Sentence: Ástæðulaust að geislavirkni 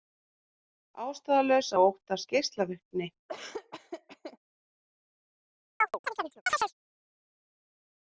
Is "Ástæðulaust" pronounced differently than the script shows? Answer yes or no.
no